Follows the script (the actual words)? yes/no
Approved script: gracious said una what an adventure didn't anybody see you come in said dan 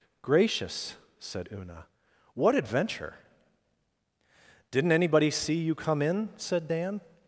no